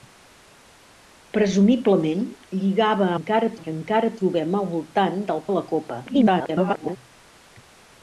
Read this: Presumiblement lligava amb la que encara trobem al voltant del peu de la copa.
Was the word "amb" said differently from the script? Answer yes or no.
yes